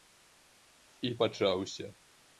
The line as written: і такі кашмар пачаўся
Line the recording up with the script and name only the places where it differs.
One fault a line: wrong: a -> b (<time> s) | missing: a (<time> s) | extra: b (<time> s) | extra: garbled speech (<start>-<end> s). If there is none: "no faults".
missing: такі кашмар (1.1 s)